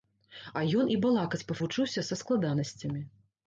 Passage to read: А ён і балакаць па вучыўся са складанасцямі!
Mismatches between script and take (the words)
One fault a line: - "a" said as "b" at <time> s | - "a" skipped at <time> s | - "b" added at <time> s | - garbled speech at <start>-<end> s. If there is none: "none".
none